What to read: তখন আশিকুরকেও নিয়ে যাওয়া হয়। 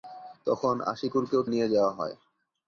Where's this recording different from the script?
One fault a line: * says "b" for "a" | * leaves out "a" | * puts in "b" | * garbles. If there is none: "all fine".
all fine